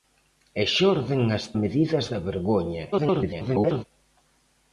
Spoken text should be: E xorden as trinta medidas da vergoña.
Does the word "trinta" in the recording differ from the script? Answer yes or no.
yes